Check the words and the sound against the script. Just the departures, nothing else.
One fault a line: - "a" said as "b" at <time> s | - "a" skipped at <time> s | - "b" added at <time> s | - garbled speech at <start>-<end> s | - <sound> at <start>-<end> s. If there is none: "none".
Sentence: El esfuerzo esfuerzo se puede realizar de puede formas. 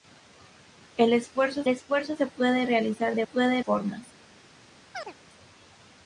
- chirp at 4.9-5.1 s